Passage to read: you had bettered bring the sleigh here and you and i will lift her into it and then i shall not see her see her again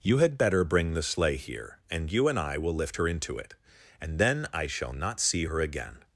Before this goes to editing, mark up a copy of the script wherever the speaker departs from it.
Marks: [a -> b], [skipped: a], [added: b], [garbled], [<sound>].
you had [bettered -> better] bring the sleigh here and you and i will lift her into it and then i shall not see her [skipped: see her] again